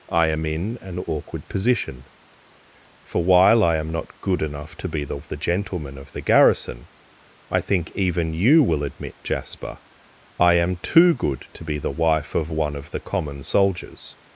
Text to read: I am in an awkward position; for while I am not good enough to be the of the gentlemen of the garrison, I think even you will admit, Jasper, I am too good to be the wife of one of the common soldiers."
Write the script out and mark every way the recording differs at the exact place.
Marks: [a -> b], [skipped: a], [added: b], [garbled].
I am in an awkward position; for while I am not good enough to be the of the gentlemen of the garrison, I think even you will admit, Jasper, I am too good to be the wife of one of the common soldiers."